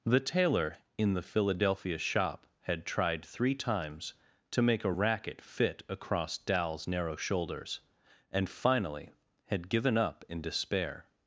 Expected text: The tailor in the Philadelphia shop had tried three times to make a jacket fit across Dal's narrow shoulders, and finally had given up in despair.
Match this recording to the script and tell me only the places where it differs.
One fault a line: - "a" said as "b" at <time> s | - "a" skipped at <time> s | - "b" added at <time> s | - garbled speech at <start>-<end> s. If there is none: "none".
- "jacket" said as "racket" at 4.9 s